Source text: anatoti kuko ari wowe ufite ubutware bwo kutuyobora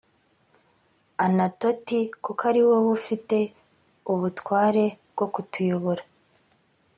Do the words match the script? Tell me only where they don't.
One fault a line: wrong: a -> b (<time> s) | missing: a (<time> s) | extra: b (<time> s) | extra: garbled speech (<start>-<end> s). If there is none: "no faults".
no faults